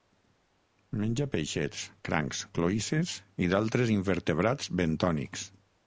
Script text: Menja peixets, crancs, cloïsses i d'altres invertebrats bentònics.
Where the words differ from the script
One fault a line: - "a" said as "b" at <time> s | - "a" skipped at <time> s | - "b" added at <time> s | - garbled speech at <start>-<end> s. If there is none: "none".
none